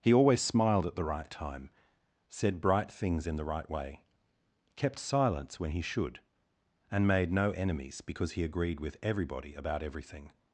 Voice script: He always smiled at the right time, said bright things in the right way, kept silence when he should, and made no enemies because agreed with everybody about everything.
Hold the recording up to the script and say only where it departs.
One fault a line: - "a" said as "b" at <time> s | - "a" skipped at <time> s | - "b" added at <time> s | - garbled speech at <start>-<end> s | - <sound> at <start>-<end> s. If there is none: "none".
- "he" added at 8.3 s